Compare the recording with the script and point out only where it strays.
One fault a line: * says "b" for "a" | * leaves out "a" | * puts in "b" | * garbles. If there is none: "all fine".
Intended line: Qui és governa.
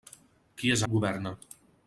all fine